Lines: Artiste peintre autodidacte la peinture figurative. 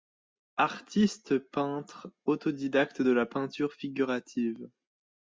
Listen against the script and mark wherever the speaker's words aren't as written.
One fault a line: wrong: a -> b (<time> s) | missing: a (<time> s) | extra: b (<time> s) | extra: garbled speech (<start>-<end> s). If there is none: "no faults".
extra: de (3.0 s)